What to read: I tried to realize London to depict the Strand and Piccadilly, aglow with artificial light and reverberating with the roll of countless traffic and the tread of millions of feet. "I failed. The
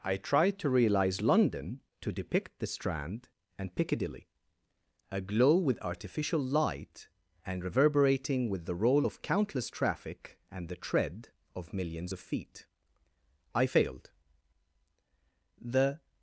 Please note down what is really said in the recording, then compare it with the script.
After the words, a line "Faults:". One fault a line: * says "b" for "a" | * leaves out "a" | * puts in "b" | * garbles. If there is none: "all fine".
I tried to realize London to depict the Strand and Piccadilly, aglow with artificial light and reverberating with the roll of countless traffic and the tread of millions of feet. "I failed. The
Faults:
all fine